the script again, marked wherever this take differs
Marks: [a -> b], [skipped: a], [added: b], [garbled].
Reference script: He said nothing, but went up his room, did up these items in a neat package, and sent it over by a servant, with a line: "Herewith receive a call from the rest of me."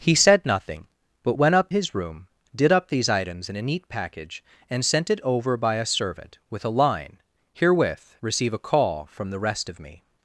He said nothing, but went up his room, did up these items in a neat package, and sent it over by a servant, with a line: "Herewith receive a call from the rest of me."